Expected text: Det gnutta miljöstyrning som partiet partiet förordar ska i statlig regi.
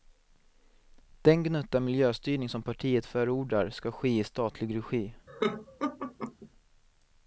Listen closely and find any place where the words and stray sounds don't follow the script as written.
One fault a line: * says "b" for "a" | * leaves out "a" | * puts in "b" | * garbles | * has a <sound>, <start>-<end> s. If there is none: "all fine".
* says "Den" for "Det"
* leaves out "partiet"
* puts in "ske"
* has a laugh, 5.3-6.5 s